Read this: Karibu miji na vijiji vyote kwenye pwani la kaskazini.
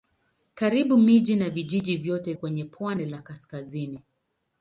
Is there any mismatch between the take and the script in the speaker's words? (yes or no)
no